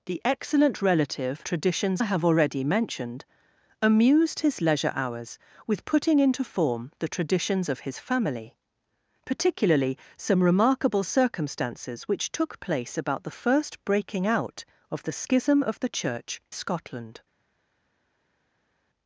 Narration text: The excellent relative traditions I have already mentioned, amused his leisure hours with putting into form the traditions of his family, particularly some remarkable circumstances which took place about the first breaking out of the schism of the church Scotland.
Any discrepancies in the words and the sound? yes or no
no